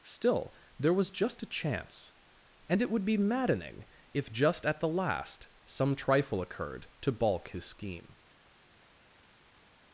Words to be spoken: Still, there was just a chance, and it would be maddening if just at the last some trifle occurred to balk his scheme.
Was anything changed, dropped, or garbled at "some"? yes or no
no